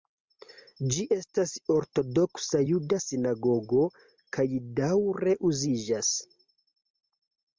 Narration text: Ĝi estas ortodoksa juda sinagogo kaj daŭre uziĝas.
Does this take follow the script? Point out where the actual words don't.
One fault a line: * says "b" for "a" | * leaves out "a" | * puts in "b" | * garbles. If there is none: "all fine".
all fine